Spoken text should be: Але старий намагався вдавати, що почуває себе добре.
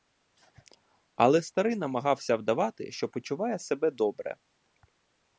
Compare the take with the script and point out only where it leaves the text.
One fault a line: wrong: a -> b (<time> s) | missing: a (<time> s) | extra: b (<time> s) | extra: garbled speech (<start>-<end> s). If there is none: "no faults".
no faults